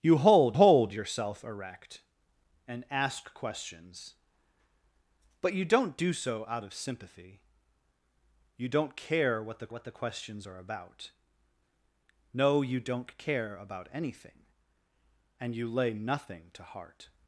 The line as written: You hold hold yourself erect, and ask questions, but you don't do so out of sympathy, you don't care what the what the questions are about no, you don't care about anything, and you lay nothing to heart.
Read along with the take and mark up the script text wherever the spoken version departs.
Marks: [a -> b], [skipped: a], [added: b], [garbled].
You hold hold yourself erect, and ask questions, but you don't do so out of sympathy, you don't care what the what the questions are about no, you don't care about anything, and you lay nothing to heart.